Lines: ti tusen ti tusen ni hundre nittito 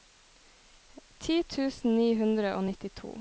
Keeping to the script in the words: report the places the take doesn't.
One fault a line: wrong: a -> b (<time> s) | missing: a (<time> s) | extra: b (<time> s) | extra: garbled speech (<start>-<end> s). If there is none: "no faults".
missing: ti tusen (2.0 s)
extra: og (2.5 s)